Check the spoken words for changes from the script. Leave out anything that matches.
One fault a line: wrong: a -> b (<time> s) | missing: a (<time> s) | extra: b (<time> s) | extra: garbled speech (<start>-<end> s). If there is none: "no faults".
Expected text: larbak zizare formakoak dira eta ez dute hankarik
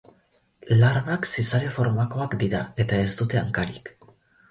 no faults